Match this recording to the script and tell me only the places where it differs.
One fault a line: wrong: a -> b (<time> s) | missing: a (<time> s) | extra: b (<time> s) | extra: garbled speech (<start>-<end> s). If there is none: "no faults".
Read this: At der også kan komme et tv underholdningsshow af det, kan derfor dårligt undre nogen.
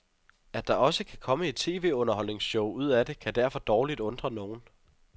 extra: ud (2.7 s)